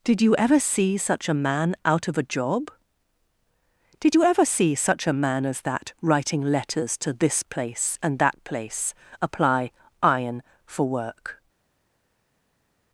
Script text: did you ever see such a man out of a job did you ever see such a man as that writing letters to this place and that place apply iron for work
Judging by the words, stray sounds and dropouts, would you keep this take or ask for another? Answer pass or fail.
pass